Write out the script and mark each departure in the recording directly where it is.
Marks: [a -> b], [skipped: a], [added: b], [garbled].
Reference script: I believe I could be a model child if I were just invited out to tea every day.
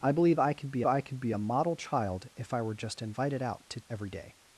I believe I could be [added: I could be] a model child if I were just invited out to [skipped: tea] every day.